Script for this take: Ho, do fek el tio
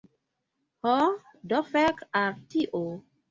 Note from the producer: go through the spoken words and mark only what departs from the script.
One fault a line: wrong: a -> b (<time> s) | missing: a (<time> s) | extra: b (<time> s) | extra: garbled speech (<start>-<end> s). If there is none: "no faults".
wrong: el -> al (2.2 s)